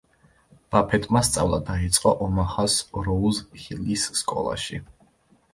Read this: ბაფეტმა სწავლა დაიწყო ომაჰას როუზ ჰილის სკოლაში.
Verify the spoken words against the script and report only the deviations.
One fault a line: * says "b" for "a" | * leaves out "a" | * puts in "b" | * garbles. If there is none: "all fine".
all fine